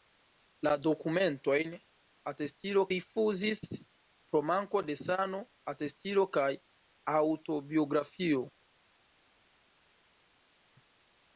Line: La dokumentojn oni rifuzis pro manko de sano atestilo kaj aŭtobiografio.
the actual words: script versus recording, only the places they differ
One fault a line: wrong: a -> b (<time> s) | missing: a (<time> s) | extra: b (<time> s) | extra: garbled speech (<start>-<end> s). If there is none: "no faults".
wrong: oni -> atestilo (2.3 s)